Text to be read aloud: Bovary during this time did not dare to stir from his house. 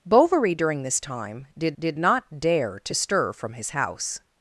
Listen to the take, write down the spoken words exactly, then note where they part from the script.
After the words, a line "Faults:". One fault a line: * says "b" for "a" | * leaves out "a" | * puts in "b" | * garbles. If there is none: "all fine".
Bovary during this time did did not dare to stir from his house.
Faults:
* puts in "did"